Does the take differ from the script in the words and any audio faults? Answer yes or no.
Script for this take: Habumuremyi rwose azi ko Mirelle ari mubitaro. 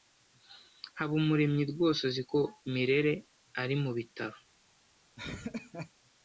yes